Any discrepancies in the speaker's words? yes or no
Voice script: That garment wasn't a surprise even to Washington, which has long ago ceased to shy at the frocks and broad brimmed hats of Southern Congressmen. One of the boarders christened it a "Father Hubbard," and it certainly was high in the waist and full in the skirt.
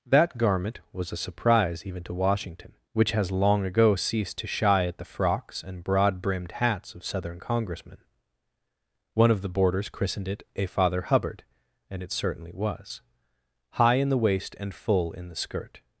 yes